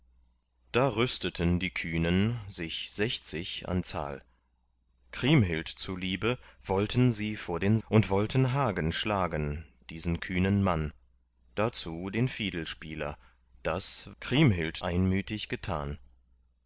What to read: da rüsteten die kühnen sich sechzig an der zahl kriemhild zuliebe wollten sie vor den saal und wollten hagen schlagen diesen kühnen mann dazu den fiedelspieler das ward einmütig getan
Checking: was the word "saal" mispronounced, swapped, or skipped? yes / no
yes